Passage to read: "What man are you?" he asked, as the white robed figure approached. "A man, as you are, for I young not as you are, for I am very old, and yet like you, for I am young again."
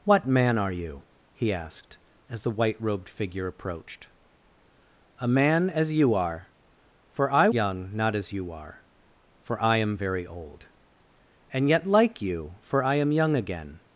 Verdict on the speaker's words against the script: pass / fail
pass